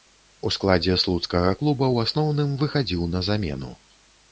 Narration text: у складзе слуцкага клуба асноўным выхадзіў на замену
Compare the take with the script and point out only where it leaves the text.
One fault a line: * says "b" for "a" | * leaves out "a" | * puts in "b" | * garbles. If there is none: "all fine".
* puts in "ў"